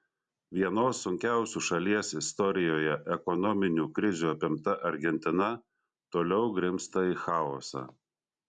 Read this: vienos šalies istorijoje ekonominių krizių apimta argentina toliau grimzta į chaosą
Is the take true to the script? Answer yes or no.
no